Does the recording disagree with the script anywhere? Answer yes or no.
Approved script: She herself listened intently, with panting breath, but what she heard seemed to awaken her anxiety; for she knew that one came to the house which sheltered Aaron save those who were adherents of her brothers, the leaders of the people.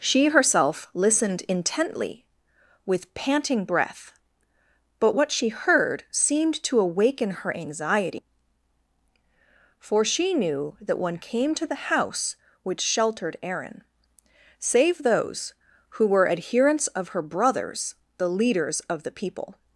no